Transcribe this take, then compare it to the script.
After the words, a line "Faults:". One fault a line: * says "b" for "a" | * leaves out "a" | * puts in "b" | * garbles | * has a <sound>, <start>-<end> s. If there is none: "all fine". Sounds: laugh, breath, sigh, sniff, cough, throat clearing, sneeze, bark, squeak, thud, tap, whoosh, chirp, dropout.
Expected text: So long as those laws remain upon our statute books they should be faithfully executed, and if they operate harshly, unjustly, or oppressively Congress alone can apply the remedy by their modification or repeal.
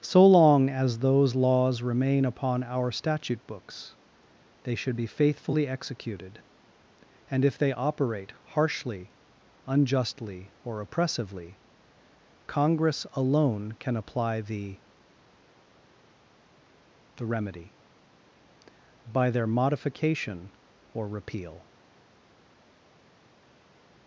So long as those laws remain upon our statute books they should be faithfully executed, and if they operate harshly, unjustly, or oppressively Congress alone can apply the the remedy by their modification or repeal.
Faults:
* puts in "the"